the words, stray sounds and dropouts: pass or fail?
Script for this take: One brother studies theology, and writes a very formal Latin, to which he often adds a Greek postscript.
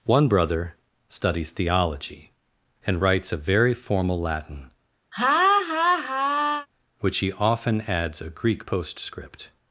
fail